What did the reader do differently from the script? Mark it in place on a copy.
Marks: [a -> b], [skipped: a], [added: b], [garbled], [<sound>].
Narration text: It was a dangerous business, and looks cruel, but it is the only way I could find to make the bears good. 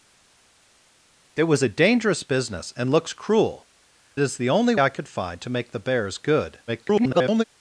It was a dangerous business, and looks cruel, [skipped: but it] is the only [skipped: way] I could find to make the bears good. [garbled]